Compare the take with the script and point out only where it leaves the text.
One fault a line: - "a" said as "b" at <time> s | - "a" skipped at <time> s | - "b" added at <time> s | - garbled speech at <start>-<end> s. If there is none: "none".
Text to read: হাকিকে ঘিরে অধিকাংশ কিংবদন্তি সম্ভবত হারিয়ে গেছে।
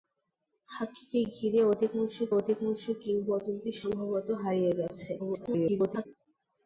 - "অধিকাংশ" added at 2.3 s
- garbled speech at 5.2-6.1 s